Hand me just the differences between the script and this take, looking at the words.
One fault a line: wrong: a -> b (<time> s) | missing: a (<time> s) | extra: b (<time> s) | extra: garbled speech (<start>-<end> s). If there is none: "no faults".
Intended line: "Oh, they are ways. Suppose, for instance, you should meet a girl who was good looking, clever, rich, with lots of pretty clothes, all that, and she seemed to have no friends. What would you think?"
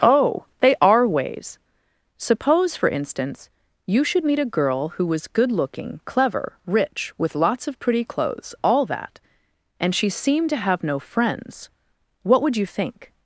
no faults